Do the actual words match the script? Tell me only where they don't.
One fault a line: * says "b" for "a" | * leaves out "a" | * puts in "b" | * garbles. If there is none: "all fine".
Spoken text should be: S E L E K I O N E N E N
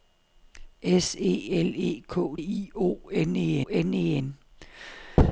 all fine